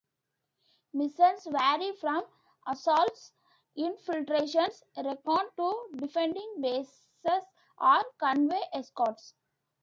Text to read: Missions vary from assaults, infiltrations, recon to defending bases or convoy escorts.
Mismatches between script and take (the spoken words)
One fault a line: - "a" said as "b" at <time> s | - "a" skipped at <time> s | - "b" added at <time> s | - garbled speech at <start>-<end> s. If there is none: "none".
none